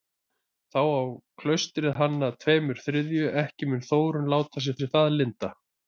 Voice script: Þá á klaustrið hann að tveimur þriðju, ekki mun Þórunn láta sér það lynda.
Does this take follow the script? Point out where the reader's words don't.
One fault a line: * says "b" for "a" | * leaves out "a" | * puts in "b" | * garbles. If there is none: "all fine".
* puts in "sér"